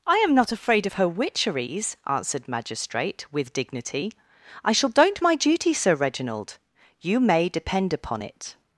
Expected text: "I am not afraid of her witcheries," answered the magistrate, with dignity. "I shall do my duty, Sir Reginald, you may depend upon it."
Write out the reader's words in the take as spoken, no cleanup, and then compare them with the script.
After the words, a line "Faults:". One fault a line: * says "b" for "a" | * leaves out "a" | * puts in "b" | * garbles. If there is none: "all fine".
"I am not afraid of her witcheries," answered magistrate, with dignity. "I shall don't my duty, Sir Reginald, you may depend upon it."
Faults:
* leaves out "the"
* says "don't" for "do"